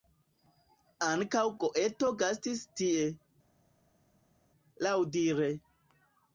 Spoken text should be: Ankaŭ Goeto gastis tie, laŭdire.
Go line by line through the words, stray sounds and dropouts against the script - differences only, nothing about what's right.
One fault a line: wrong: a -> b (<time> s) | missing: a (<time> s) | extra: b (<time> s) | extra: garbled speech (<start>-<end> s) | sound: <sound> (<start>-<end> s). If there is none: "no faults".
no faults